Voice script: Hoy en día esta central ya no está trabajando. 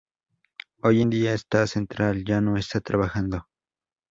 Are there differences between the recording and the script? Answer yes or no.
no